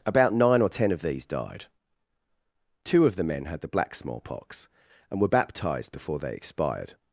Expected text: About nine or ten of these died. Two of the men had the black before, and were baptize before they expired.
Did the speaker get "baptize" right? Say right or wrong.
wrong